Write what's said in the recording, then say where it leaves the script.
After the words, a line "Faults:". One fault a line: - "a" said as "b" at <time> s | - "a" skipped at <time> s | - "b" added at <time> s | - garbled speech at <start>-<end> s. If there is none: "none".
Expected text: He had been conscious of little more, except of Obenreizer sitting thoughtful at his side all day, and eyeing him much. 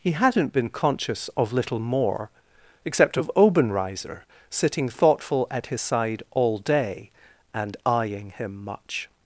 He hadn't been conscious of little more, except of Obenreizer sitting thoughtful at his side all day, and eyeing him much.
Faults:
- "had" said as "hadn't" at 0.1 s